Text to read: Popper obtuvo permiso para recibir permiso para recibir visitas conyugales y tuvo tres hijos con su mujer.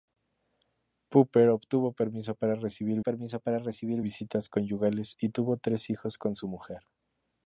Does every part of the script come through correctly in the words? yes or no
yes